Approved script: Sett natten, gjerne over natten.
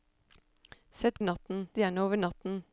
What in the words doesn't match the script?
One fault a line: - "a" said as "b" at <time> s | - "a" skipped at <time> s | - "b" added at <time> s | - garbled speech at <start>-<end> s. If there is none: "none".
none